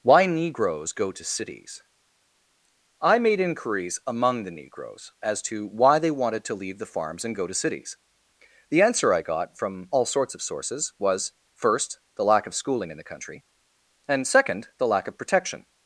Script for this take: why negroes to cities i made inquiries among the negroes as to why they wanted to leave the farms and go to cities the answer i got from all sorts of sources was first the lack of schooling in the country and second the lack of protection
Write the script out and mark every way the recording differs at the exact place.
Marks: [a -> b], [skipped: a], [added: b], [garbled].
why negroes [added: go] to cities i made inquiries among the negroes as to why they wanted to leave the farms and go to cities the answer i got from all sorts of sources was first the lack of schooling in the country and second the lack of protection